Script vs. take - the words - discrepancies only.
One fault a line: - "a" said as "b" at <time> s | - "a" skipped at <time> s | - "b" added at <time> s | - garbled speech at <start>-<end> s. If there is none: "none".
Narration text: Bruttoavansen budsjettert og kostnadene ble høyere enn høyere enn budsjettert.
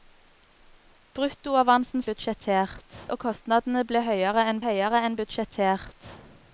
none